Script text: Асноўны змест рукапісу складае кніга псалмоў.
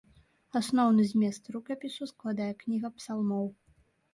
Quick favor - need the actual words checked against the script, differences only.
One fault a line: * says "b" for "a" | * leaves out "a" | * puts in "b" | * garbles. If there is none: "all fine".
all fine